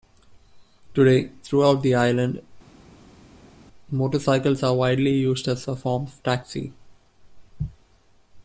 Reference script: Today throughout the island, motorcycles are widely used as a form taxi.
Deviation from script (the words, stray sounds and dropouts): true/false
true